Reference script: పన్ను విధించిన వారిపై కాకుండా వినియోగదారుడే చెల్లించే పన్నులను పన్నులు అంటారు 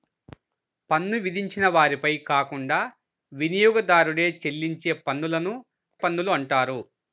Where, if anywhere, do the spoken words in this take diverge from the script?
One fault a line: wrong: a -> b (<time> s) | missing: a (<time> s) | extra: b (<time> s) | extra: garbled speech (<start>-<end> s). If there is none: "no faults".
no faults